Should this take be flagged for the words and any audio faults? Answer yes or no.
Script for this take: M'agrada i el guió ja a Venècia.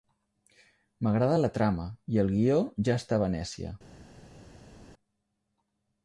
yes